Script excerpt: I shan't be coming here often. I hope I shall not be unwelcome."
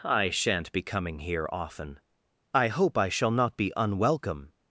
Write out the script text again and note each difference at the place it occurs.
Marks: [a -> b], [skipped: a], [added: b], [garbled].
I shan't be coming here often. I hope I shall not be unwelcome."